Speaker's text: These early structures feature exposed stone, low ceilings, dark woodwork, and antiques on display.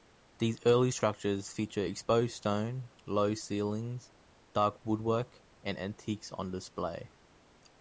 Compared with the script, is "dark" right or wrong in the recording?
right